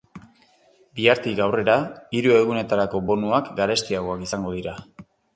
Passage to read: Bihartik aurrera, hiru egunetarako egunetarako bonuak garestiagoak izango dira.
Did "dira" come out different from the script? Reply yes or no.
no